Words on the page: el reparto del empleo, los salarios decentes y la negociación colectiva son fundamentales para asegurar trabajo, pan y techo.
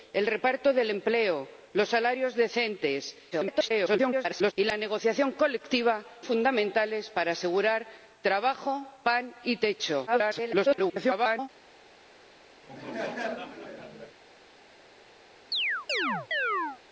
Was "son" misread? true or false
true